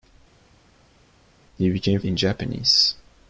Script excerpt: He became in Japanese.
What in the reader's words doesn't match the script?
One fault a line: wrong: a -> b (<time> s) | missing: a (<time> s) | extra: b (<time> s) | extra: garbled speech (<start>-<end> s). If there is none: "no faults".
no faults